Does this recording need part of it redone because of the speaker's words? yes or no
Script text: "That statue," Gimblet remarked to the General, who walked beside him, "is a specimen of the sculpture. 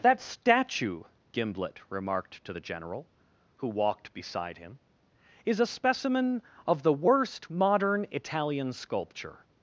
yes